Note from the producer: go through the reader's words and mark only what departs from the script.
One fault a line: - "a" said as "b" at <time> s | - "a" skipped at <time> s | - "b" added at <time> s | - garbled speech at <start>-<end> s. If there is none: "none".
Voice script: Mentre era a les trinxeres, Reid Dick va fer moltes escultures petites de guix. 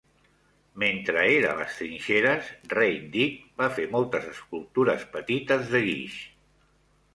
none